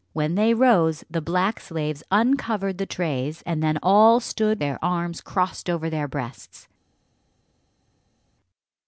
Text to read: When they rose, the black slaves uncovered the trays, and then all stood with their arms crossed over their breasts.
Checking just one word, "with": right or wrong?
wrong